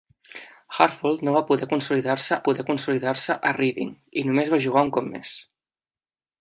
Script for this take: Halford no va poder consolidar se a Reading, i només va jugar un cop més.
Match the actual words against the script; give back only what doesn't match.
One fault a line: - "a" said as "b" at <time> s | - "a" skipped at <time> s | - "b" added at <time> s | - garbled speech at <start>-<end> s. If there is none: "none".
- "poder consolidar se" added at 2.5 s